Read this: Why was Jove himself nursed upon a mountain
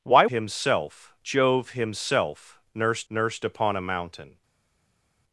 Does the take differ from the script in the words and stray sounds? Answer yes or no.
yes